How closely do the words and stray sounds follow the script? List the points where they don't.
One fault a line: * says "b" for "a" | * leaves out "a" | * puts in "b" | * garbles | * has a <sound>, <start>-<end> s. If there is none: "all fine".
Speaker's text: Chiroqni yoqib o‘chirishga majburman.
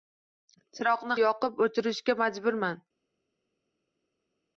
all fine